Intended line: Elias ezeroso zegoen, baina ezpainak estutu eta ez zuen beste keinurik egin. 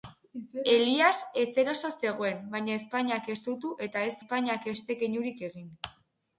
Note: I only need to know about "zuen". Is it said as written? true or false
false